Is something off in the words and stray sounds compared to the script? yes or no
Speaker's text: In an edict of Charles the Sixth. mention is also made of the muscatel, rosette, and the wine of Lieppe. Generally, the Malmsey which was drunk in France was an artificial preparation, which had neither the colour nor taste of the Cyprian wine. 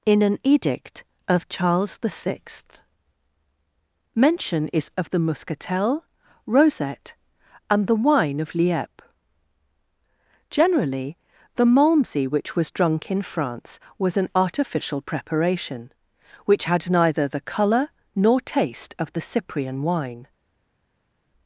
yes